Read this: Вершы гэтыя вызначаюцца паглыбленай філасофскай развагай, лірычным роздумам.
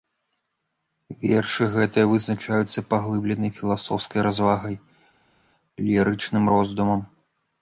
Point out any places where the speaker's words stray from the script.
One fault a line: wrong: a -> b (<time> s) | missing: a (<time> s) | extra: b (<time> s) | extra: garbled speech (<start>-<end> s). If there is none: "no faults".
no faults